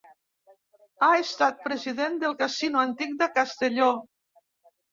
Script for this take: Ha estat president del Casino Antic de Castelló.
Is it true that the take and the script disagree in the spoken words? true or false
false